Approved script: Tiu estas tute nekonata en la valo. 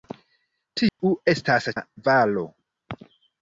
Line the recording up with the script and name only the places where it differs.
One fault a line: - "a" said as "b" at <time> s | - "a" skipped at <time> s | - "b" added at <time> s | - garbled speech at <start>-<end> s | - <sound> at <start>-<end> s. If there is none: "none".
- dropout at 0.9-1.0 s
- "tute nekonata en" skipped at 1.7 s